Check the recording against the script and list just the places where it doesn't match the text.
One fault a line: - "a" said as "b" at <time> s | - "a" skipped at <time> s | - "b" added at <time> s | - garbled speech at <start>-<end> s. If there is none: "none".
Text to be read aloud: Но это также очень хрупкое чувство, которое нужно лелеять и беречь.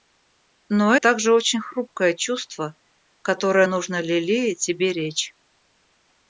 - "это" skipped at 0.9 s